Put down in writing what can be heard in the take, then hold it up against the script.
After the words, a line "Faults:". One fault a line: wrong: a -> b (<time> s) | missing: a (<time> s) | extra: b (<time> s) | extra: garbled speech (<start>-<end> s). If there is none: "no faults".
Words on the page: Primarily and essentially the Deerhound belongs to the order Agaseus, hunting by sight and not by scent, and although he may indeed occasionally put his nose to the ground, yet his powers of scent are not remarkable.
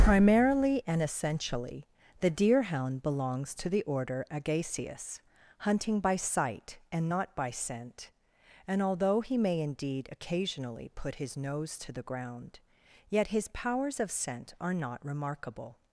Primarily and essentially the Deerhound belongs to the order Agaseus, hunting by sight and not by scent, and although he may indeed occasionally put his nose to the ground, yet his powers of scent are not remarkable.
Faults:
no faults